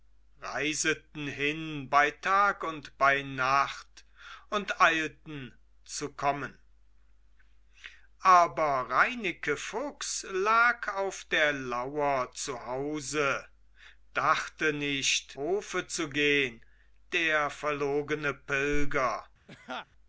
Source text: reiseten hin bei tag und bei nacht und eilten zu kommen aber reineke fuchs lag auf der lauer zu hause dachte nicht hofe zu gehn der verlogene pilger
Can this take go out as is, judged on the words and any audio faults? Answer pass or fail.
fail